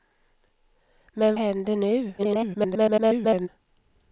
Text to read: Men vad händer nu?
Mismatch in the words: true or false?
true